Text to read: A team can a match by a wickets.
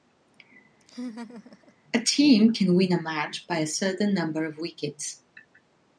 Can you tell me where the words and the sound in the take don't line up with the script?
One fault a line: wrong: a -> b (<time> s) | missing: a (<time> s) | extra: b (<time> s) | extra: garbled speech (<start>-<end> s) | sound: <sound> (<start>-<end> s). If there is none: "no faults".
sound: laugh (0.8-1.7 s)
extra: win (2.8 s)
extra: certain number of (3.7 s)